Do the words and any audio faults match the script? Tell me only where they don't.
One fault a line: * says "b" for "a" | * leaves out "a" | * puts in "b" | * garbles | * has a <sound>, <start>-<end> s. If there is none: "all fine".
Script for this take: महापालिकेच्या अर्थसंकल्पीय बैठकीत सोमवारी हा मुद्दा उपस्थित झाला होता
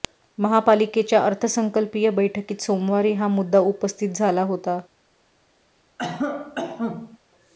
* has a cough, 6.0-7.2 s